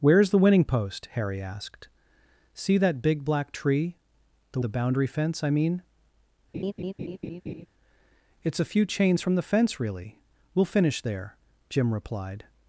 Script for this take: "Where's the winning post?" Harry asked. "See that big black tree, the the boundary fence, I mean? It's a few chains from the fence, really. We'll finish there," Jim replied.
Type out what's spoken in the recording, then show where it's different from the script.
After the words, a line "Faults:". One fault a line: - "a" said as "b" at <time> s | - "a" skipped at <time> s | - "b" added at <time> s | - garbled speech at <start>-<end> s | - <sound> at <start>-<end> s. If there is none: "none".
"Where's the winning post?" Harry asked. "See that big black tree, the the boundary fence, I mean? It's a few chains from the fence, really. We'll finish there," Jim replied.
Faults:
- laugh at 6.5-7.7 s